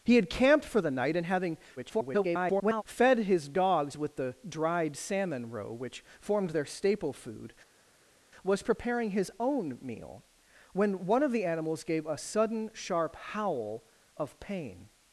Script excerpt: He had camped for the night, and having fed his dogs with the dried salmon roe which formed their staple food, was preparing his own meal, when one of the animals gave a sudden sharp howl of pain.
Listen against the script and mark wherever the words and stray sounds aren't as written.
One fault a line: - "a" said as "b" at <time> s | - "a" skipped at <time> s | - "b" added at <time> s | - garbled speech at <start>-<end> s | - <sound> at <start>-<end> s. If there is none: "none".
- garbled speech at 1.8-2.8 s